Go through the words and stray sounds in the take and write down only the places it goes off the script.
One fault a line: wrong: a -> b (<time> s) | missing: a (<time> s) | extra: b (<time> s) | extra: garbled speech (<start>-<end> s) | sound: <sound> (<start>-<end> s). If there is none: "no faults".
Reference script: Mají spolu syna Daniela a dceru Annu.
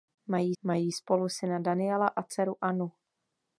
extra: mají (0.6 s)